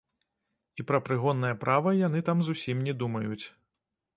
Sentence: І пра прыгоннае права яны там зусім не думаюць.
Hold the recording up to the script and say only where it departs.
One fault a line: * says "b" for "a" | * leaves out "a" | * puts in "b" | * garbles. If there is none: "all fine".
all fine